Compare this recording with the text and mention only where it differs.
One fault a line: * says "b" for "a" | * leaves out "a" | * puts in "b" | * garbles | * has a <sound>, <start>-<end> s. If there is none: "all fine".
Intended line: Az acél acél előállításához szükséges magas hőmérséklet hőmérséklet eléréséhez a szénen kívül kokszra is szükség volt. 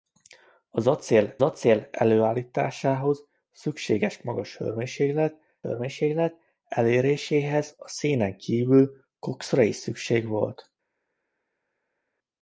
all fine